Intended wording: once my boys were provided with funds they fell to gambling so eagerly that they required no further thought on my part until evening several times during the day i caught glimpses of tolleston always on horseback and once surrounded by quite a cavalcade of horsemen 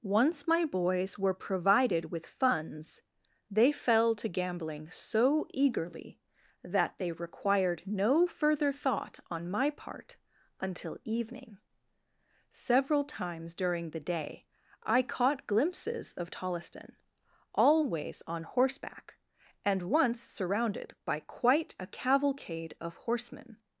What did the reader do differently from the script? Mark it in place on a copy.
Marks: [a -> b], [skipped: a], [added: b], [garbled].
once my boys were provided with funds they fell to gambling so eagerly that they required no further thought on my part until evening several times during the day i caught glimpses of tolleston always on horseback and once surrounded by quite a cavalcade of horsemen